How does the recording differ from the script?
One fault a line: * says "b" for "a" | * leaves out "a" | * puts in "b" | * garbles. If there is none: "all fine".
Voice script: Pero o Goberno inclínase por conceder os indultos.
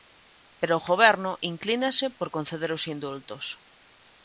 all fine